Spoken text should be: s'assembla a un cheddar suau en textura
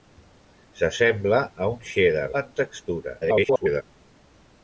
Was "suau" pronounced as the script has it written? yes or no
no